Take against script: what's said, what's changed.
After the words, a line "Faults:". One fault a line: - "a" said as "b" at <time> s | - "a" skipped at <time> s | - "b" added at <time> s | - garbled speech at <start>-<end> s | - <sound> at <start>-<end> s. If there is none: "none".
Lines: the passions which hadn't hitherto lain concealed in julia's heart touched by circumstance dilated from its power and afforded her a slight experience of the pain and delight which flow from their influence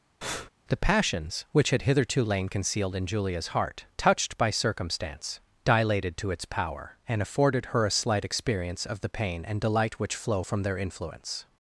the passions which had hitherto lain concealed in julia's heart touched by circumstance dilated to its power and afforded her a slight experience of the pain and delight which flow from their influence
Faults:
- breath at 0.2-0.5 s
- "hadn't" said as "had" at 1.7 s
- "from" said as "to" at 6.2 s